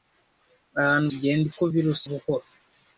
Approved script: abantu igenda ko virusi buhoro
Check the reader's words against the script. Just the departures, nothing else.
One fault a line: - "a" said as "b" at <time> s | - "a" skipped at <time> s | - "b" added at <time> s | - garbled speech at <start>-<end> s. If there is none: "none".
none